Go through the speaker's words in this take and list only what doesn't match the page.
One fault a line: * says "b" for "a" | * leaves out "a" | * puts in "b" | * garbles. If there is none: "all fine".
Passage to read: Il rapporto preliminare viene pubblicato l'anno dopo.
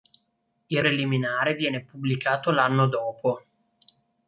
* leaves out "rapporto"